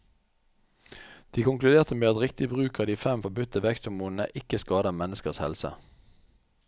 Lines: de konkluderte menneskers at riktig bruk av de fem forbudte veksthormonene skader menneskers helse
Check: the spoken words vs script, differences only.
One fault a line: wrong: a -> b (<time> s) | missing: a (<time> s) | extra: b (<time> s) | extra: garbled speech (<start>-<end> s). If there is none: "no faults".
wrong: menneskers -> med (1.9 s)
extra: ikke (4.4 s)